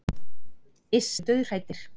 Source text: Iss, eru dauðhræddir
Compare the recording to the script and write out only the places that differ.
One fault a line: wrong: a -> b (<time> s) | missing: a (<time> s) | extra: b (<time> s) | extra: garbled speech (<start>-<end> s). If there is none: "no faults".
no faults